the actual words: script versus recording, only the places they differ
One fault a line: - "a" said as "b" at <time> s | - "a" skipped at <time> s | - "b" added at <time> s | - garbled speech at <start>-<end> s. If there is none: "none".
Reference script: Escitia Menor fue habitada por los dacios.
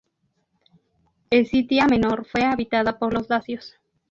none